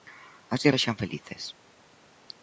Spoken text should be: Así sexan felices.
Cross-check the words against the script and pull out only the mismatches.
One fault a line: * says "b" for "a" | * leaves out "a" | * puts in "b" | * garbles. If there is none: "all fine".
all fine